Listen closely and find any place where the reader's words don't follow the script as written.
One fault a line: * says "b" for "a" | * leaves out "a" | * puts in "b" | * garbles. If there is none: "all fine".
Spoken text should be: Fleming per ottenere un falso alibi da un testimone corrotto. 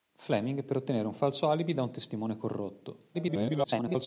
* garbles